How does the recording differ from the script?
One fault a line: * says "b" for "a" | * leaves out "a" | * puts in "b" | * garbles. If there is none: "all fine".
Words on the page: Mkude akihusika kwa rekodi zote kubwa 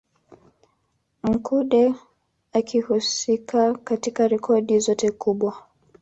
* says "katika" for "kwa"